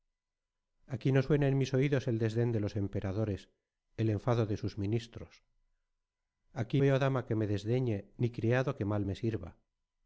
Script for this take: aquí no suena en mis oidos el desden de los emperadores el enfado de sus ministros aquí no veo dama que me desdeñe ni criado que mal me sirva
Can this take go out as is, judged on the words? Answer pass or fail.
fail